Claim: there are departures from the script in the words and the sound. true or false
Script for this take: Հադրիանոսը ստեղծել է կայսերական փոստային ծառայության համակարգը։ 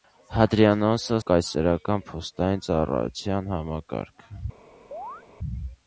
true